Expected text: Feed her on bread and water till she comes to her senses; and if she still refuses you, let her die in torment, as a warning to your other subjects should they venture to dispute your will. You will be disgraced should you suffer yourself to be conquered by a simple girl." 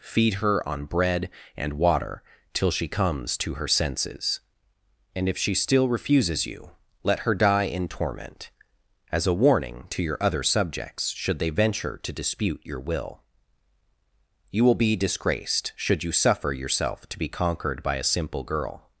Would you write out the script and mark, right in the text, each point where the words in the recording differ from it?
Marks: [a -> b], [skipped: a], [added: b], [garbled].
Feed her on bread and water till she comes to her senses; and if she still refuses you, let her die in torment, as a warning to your other subjects should they venture to dispute your will. You will be disgraced should you suffer yourself to be conquered by a simple girl."